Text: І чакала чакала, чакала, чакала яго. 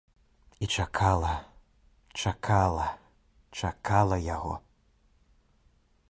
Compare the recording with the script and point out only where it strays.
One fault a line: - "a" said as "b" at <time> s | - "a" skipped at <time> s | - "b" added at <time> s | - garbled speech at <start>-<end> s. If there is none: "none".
- "чакала" skipped at 4.2 s